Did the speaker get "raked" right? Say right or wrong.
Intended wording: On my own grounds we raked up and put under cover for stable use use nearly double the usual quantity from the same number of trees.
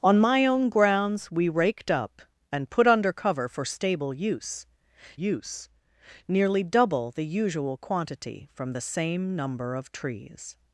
right